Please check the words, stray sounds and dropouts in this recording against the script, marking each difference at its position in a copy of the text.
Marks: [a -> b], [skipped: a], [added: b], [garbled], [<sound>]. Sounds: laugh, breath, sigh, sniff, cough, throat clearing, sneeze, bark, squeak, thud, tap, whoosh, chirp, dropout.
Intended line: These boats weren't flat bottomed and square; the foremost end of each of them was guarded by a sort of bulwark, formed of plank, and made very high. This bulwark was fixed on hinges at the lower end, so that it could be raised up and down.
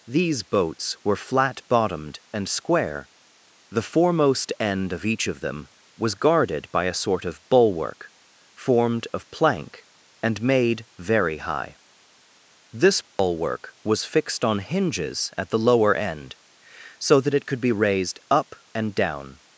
These boats [weren't -> were] flat bottomed and square; the foremost end of each of them was guarded by a sort of bulwark, formed of plank, and made very high. This bulwark [dropout] was fixed on hinges at the lower end, so that it could be raised up and down.